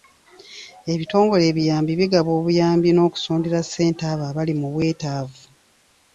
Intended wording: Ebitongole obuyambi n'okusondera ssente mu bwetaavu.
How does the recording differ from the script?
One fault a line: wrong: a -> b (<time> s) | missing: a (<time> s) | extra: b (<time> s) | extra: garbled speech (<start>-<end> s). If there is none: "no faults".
extra: ebiyambi bigaba (1.5 s)
extra: abo abali (4.1 s)